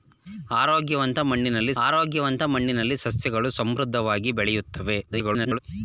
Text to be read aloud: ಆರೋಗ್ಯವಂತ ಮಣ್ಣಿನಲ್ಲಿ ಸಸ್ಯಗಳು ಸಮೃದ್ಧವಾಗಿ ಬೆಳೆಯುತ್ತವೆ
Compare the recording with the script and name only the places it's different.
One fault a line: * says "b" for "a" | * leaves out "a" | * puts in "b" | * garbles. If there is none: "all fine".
* puts in "ಆರೋಗ್ಯವಂತ ಮಣ್ಣಿನಲ್ಲಿ"
* garbles